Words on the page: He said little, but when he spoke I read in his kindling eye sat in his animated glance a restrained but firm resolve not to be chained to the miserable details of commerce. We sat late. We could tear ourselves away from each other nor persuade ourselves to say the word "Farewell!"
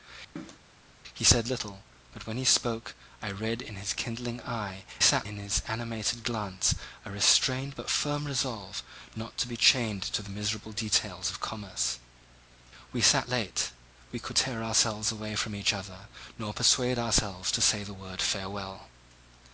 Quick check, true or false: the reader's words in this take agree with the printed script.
true